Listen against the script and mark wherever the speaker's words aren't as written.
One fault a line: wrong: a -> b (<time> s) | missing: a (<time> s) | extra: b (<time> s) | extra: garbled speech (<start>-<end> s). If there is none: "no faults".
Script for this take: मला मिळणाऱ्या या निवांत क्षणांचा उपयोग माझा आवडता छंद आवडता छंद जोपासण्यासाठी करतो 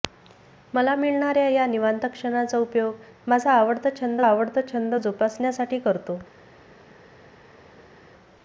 no faults